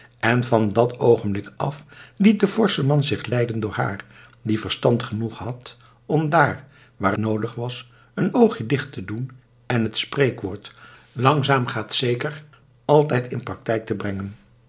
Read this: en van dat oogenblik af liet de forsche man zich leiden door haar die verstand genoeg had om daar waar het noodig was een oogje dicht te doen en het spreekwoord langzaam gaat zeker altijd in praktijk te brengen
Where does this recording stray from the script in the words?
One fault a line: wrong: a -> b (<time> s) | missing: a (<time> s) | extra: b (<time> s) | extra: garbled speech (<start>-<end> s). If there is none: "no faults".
missing: het (7.2 s)